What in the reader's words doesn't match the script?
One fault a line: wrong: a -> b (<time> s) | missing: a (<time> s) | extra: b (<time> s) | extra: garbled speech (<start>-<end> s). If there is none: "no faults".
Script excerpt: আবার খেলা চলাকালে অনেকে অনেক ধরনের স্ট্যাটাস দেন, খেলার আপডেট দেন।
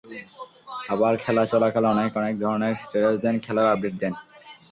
no faults